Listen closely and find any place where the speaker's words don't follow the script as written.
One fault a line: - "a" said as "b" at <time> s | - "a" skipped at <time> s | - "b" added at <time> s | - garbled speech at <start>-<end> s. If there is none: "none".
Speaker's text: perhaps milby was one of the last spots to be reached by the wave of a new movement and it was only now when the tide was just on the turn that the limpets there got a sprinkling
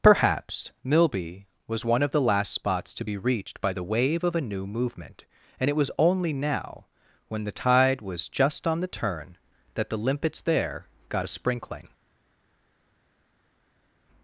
none